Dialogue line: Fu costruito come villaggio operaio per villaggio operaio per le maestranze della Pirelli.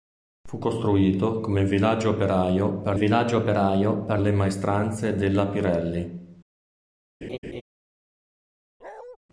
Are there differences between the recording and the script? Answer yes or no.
no